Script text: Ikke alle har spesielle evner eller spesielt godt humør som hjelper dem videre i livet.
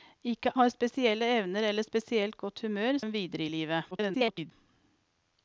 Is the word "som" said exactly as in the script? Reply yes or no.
no